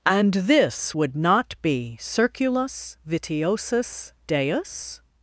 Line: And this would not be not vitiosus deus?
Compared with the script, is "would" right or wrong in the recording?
right